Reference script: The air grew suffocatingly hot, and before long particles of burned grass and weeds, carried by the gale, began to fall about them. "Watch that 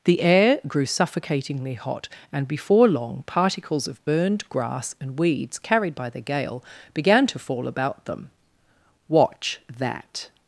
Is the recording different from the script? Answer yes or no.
no